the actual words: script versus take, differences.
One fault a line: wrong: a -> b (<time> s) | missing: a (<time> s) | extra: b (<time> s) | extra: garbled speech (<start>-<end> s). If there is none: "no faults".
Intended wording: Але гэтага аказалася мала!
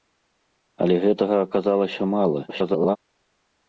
extra: garbled speech (2.5-3.0 s)